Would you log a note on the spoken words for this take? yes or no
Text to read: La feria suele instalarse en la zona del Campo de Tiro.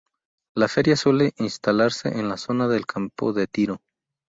no